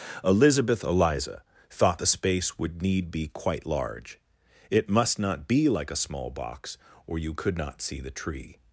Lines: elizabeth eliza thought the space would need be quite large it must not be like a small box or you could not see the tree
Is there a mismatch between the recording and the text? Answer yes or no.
no